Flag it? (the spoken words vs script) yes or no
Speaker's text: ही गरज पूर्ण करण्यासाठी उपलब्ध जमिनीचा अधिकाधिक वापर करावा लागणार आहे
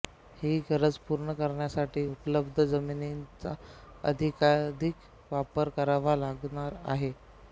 no